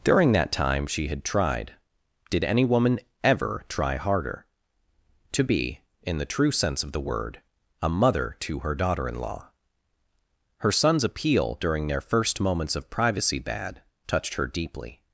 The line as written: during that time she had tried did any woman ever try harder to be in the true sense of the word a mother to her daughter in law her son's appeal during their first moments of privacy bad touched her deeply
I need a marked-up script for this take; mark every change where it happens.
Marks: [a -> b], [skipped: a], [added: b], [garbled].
during that time she had tried did any woman ever try harder to be in the true sense of the word a mother to her daughter in law her son's appeal during their first moments of privacy bad touched her deeply